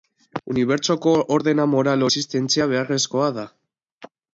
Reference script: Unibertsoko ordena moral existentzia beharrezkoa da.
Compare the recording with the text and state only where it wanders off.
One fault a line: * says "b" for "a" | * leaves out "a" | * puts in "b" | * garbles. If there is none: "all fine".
all fine